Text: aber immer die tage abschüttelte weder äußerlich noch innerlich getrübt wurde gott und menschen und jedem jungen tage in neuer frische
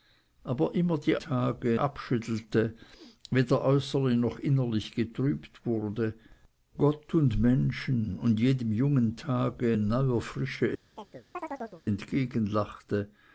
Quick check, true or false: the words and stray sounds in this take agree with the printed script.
false